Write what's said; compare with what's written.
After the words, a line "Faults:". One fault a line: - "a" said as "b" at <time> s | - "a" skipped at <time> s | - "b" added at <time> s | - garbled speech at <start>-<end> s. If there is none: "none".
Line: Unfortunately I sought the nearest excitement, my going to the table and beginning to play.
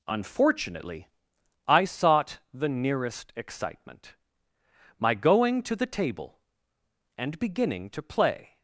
Unfortunately I sought the nearest excitement, my going to the table and beginning to play.
Faults:
none